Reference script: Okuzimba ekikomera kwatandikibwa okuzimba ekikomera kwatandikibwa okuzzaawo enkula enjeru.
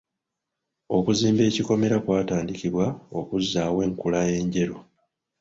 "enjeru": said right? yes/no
yes